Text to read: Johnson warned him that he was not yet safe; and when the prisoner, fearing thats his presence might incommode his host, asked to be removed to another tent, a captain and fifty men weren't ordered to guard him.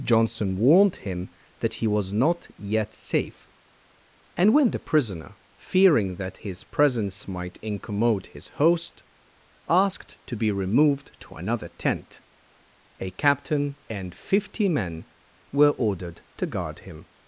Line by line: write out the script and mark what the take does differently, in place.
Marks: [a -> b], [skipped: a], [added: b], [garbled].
Johnson warned him that he was not yet safe; and when the prisoner, fearing [thats -> that] his presence might incommode his host, asked to be removed to another tent, a captain and fifty men [weren't -> were] ordered to guard him.